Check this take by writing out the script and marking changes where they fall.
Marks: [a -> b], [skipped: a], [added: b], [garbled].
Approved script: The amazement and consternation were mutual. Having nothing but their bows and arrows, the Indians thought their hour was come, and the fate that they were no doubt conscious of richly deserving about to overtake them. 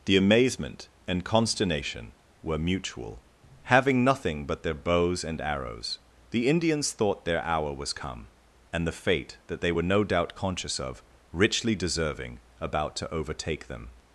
The amazement and consternation were mutual. Having nothing but their bows and arrows, the Indians thought their hour was come, and the fate that they were no doubt conscious of richly deserving about to overtake them.